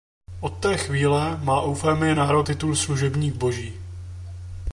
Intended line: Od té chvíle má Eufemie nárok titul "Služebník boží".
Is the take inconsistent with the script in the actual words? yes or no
no